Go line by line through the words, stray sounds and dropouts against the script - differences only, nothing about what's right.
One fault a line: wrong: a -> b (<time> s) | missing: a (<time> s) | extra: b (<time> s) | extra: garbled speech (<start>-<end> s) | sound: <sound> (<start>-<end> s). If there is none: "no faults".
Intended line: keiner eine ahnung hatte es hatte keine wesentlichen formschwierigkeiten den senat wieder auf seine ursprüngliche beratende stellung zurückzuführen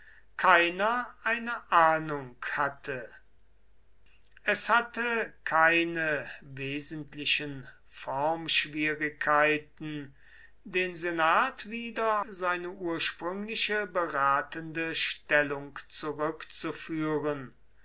missing: auf (12.2 s)